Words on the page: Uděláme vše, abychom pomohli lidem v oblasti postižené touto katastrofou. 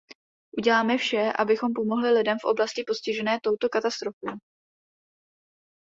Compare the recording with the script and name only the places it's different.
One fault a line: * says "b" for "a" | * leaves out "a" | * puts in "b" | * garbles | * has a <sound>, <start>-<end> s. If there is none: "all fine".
all fine